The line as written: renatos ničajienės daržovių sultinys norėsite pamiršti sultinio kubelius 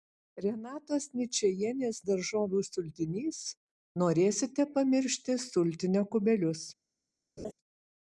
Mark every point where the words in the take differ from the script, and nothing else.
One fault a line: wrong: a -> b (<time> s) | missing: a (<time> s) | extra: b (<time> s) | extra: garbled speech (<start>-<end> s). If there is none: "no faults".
no faults